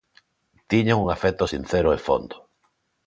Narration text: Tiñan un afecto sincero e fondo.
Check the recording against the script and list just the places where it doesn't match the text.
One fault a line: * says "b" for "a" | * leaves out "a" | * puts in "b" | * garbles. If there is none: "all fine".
all fine